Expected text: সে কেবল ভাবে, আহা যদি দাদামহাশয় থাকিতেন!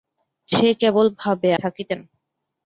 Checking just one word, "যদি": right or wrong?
wrong